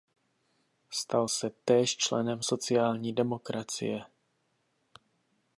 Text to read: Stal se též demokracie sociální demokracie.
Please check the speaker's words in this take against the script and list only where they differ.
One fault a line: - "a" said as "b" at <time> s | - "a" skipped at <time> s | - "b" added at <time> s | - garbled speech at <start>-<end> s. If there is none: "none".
- "demokracie" said as "členem" at 2.0 s